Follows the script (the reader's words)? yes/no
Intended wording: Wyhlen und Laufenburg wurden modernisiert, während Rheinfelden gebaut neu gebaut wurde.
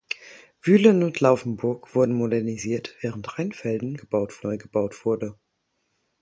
yes